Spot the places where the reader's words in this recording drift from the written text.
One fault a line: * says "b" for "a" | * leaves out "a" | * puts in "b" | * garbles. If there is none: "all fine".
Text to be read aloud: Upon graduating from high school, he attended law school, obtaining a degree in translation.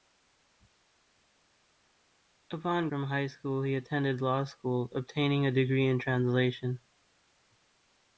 * leaves out "graduating"